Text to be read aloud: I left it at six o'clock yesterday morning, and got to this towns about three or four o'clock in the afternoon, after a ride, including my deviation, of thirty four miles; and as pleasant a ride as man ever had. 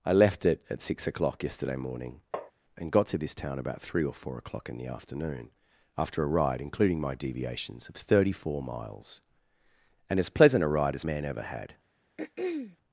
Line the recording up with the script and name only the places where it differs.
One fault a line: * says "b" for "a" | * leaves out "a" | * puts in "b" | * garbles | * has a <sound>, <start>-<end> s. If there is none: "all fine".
* has a tap, 2.3-2.5 s
* says "town" for "towns"
* says "deviations" for "deviation"
* has a throat clearing, 12.2-12.8 s